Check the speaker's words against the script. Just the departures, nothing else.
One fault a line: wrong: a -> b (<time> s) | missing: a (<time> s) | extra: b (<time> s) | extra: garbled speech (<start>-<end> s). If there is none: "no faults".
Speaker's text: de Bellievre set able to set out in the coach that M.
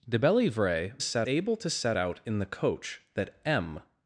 no faults